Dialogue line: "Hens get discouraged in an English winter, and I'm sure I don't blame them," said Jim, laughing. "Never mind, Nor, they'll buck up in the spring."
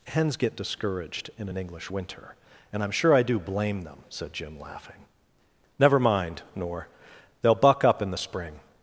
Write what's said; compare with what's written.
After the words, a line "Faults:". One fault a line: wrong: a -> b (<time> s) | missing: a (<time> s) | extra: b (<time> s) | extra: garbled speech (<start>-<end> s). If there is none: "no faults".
"Hens get discouraged in an English winter, and I'm sure I do blame them," said Jim, laughing. "Never mind, Nor, they'll buck up in the spring."
Faults:
wrong: don't -> do (3.2 s)